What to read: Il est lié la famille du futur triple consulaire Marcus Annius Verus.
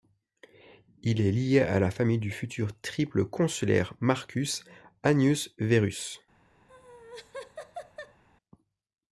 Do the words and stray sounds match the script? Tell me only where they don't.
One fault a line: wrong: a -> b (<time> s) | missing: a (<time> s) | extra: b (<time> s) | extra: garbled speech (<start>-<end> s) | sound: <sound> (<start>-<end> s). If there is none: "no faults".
extra: à (1.6 s)
sound: laugh (6.7-8.2 s)